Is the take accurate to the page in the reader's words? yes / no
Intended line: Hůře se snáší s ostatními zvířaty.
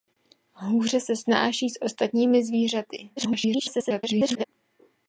no